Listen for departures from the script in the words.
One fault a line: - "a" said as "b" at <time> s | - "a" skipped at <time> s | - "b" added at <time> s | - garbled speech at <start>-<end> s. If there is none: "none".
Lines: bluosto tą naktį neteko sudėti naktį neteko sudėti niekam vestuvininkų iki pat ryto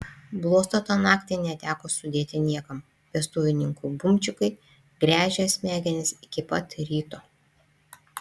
- "naktį neteko sudėti niekam vestuvininkų" said as "niekam vestuvininkų bumčikai gręžė smegenis" at 2.5 s